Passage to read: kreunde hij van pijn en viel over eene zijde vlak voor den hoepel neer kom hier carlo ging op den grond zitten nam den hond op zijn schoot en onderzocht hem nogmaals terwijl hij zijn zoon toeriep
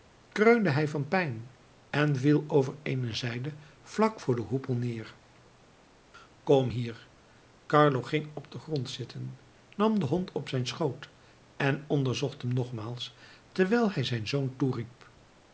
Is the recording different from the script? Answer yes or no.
no